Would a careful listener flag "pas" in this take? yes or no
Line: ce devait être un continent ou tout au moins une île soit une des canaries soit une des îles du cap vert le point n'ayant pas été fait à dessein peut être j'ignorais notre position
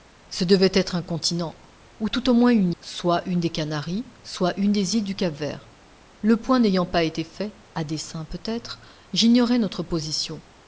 no